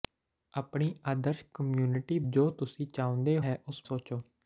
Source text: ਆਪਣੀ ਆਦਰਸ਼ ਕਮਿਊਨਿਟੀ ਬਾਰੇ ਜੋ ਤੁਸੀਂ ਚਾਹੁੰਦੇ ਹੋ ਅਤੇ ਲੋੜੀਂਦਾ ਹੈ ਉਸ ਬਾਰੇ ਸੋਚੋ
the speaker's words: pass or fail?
fail